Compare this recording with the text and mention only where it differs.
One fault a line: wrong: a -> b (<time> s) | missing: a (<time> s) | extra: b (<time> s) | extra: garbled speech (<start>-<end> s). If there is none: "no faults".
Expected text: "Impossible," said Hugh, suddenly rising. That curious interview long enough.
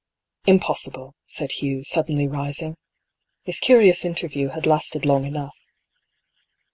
wrong: That -> This (3.5 s)
extra: had lasted (4.5 s)